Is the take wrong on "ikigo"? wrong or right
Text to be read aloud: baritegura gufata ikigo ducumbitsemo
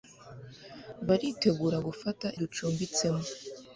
wrong